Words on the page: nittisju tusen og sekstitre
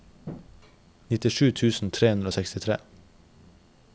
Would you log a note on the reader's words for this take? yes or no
yes